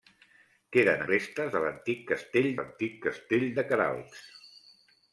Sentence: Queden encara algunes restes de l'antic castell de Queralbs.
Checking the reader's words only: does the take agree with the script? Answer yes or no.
no